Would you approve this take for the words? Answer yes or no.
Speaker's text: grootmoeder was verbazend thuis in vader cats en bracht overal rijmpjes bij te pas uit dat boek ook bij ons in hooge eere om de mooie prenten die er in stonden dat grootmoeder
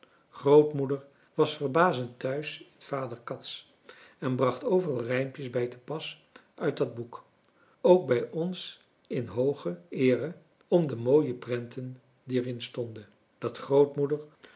yes